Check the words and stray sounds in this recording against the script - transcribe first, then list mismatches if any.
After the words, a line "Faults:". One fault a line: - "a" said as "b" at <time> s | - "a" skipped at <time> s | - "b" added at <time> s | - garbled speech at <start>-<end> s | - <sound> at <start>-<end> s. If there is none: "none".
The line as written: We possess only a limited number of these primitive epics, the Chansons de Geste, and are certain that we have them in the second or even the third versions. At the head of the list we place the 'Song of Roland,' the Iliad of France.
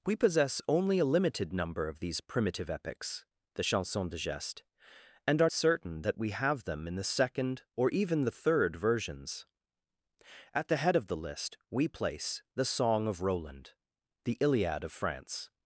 We possess only a limited number of these primitive epics, the Chansons de Geste, and are certain that we have them in the second or even the third versions. At the head of the list we place the 'Song of Roland,' the Iliad of France.
Faults:
none